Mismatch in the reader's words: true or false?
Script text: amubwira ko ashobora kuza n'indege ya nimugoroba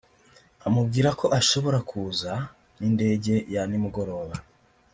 false